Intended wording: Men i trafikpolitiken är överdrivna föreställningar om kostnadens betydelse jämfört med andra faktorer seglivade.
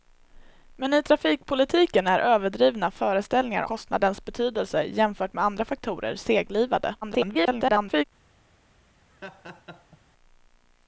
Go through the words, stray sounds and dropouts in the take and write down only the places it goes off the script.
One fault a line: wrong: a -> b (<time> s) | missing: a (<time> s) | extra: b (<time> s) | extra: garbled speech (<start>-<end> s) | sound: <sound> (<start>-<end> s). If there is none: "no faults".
missing: om (3.6 s)
extra: garbled speech (7.0-8.0 s)
sound: laugh (9.1-10.0 s)